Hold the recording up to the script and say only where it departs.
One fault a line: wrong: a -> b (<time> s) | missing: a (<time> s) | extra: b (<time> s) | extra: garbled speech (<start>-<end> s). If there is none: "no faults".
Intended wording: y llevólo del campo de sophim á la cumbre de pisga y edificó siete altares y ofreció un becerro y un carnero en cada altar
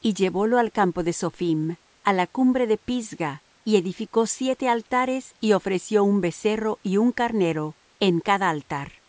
wrong: del -> al (0.6 s)